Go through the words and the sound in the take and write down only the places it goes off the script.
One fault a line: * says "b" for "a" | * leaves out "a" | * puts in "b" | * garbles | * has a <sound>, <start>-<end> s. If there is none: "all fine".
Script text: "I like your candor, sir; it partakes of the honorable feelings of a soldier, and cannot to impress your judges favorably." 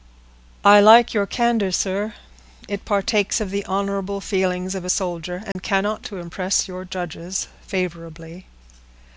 * has a dropout, 5.5-5.6 s